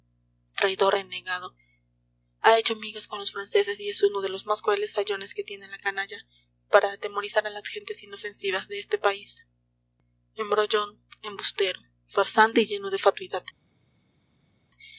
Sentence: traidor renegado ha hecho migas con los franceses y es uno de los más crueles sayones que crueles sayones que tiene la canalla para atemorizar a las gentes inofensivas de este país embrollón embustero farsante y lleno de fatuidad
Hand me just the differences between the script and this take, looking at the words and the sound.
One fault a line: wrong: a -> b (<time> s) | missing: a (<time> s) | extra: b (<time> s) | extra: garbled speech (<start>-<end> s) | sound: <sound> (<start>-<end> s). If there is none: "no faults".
missing: crueles sayones que (5.4 s)